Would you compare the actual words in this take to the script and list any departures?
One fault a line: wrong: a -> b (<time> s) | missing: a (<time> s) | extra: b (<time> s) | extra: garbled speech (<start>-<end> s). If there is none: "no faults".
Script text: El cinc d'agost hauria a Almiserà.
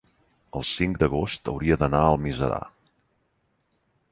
extra: d'anar (1.9 s)